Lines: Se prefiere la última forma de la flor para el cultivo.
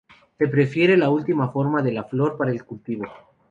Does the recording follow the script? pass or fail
pass